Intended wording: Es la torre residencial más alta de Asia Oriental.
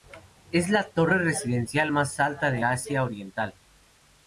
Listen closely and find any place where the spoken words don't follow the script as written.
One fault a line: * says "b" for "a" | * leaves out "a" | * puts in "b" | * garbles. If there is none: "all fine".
all fine